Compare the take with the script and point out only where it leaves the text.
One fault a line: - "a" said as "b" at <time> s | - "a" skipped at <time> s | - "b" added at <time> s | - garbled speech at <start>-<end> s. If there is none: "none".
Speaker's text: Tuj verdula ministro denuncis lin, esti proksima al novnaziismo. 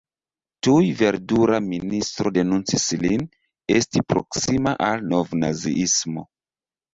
none